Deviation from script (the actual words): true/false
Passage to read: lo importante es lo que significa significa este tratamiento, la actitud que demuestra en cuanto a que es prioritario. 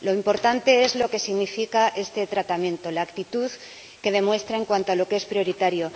true